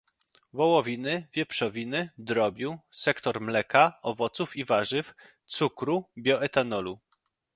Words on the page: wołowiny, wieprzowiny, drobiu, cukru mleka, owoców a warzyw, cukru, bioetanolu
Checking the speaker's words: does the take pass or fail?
fail